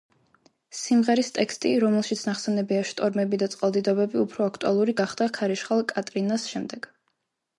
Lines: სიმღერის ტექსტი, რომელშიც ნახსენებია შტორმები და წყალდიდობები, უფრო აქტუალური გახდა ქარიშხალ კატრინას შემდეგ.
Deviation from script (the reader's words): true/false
false